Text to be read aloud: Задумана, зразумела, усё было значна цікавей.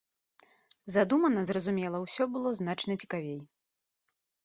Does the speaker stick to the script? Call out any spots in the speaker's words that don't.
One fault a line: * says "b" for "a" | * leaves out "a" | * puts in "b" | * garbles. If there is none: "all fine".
all fine